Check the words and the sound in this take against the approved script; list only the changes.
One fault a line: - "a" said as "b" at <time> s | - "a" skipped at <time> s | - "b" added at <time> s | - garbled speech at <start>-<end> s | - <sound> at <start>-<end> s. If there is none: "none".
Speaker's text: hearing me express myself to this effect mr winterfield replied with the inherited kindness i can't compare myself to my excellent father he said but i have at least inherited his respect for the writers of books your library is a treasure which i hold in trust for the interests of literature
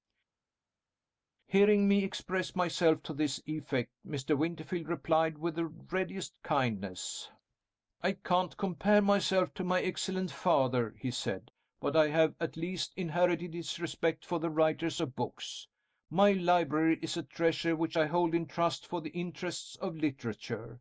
- "inherited" said as "readiest" at 5.6 s
- "your" said as "my" at 16.1 s